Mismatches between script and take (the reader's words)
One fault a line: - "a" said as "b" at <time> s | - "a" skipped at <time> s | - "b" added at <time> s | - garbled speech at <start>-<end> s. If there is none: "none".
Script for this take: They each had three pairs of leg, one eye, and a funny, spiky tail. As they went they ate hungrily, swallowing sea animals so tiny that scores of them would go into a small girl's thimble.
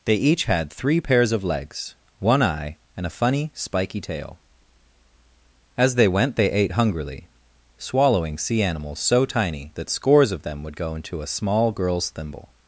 - "leg" said as "legs" at 1.4 s